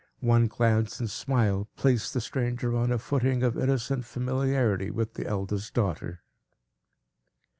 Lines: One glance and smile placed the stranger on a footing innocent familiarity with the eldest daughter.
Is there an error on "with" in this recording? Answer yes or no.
no